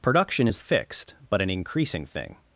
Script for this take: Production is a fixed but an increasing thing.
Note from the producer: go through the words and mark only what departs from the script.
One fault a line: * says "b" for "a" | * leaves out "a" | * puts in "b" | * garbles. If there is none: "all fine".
all fine